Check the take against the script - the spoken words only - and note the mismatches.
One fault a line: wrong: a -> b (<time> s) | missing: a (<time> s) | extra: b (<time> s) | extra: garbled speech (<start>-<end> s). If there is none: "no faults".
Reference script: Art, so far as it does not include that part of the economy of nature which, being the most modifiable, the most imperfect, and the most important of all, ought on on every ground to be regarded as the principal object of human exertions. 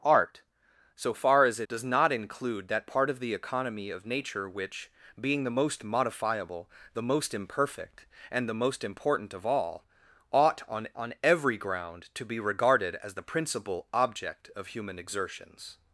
no faults